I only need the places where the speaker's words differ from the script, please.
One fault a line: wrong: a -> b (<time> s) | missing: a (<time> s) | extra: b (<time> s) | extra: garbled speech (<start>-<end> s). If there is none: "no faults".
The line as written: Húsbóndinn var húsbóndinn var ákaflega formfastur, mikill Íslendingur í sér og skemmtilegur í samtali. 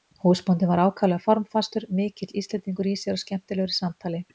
missing: húsbóndinn var (0.8 s)